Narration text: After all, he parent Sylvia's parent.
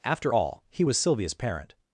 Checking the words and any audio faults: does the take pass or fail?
fail